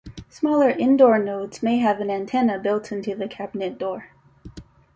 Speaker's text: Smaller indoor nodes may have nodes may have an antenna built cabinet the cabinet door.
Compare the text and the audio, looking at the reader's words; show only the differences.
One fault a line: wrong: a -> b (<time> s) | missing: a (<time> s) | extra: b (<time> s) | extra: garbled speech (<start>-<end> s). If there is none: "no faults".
missing: nodes may have (2.0 s)
wrong: cabinet -> into (2.9 s)